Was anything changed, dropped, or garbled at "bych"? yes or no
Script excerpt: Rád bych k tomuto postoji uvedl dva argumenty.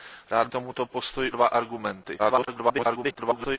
yes